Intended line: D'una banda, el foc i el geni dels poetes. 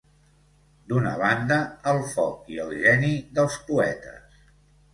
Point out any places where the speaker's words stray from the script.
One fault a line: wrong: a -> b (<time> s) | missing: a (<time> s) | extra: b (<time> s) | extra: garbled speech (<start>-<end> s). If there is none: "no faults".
no faults